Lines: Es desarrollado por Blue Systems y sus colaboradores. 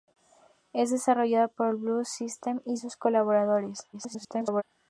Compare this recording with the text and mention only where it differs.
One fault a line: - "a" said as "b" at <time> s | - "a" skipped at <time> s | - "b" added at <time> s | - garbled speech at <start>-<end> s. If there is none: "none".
- garbled speech at 3.9-4.6 s